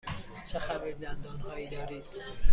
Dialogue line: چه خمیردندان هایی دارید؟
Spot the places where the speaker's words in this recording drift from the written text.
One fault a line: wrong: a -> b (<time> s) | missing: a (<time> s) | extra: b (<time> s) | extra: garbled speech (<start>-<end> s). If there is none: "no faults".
no faults